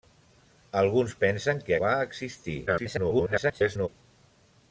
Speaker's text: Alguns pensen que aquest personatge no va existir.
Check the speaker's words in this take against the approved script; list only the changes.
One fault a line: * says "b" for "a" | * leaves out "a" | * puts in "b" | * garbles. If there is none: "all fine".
* leaves out "aquest personatge no"
* garbles